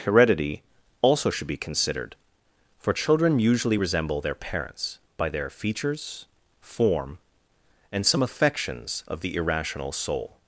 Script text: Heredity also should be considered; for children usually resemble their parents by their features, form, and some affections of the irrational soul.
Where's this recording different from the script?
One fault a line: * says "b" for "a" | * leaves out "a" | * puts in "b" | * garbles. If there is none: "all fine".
all fine